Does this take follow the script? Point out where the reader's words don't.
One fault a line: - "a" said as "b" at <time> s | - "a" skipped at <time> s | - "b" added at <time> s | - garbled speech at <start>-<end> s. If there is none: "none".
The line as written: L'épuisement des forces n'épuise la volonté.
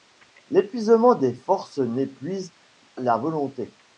none